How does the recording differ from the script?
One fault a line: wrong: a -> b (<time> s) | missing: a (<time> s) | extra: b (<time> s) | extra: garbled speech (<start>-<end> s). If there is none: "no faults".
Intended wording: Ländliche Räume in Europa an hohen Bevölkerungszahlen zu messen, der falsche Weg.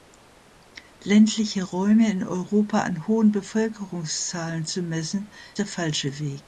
no faults